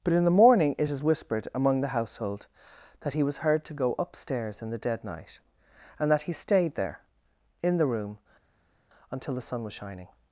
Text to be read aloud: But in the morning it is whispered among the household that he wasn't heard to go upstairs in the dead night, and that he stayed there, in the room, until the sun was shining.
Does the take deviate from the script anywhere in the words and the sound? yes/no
yes